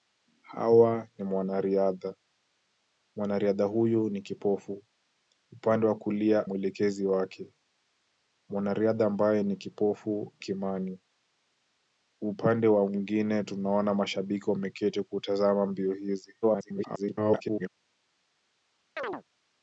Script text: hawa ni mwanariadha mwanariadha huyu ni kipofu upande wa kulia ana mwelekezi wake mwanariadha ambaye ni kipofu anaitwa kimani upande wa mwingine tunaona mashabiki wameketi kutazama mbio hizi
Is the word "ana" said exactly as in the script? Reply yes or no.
no